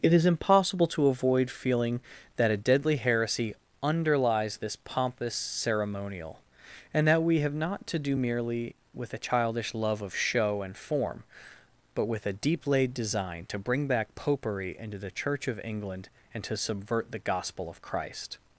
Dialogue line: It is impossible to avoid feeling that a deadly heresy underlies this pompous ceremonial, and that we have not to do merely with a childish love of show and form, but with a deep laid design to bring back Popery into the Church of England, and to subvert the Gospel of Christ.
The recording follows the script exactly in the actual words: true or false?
true